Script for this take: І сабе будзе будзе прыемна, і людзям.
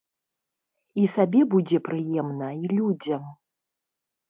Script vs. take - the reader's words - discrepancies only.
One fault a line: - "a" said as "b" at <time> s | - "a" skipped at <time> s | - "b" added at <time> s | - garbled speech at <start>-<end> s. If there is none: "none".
- "будзе" skipped at 1.8 s